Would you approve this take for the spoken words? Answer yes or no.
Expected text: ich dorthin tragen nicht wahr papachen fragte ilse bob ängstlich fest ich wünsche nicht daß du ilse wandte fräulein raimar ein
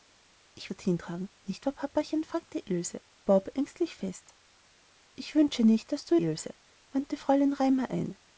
yes